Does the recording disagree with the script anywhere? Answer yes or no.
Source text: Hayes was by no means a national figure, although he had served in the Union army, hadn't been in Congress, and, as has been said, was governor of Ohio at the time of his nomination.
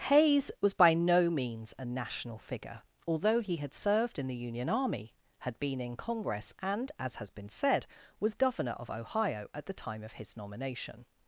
yes